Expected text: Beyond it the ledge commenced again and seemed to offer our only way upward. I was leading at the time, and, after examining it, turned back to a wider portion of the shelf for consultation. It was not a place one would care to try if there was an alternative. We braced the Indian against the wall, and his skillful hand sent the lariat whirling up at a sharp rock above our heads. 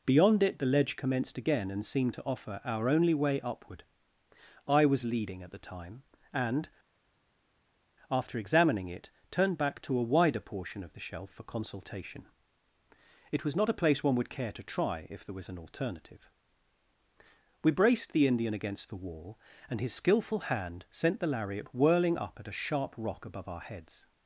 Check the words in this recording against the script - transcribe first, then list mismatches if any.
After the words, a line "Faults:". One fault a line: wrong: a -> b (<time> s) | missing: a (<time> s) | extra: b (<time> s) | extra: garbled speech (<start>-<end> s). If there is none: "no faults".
Beyond it the ledge commenced again and seemed to offer our only way upward. I was leading at the time, and, after examining it, turned back to a wider portion of the shelf for consultation. It was not a place one would care to try if there was an alternative. We braced the Indian against the wall, and his skillful hand sent the lariat whirling up at a sharp rock above our heads.
Faults:
no faults